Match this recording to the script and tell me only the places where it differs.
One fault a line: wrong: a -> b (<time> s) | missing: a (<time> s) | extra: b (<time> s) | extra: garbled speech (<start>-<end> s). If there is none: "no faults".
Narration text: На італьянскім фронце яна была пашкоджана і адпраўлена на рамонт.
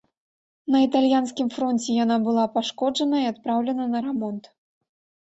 no faults